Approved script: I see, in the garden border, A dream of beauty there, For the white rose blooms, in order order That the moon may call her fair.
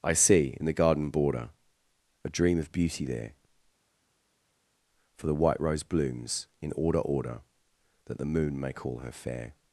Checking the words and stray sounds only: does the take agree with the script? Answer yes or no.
yes